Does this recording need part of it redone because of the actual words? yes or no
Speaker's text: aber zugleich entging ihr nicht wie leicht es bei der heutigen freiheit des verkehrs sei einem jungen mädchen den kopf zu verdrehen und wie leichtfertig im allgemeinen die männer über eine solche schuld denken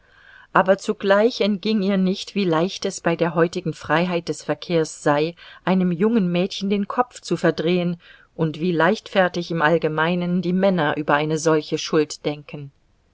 no